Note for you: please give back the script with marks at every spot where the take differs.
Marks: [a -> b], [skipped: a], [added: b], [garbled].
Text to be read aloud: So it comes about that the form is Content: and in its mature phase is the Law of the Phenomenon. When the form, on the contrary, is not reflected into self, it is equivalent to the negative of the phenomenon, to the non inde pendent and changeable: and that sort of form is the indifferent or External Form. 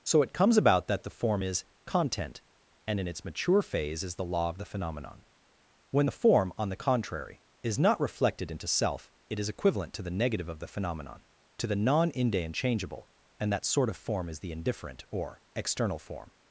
So it comes about that the form is Content: and in its mature phase is the Law of the Phenomenon. When the form, on the contrary, is not reflected into self, it is equivalent to the negative of the phenomenon, to the non inde [skipped: pendent] and changeable: and that sort of form is the indifferent or External Form.